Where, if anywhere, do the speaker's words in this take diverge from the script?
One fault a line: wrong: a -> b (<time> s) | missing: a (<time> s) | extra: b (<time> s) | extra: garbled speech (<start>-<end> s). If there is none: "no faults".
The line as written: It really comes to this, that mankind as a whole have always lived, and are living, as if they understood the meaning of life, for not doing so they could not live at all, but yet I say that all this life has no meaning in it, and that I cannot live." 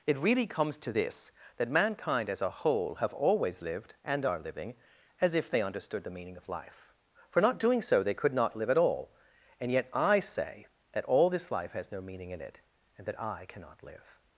wrong: but -> and (9.6 s)